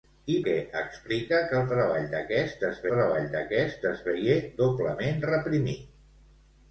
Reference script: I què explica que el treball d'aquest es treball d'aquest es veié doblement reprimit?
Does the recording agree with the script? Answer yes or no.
yes